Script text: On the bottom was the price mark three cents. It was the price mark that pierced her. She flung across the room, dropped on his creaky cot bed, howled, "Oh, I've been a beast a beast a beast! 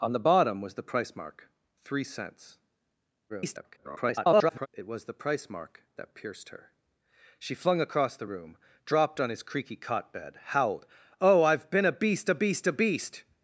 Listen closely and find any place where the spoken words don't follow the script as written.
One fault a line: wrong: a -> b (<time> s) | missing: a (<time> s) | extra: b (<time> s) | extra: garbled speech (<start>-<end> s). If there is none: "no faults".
extra: garbled speech (3.3-4.7 s)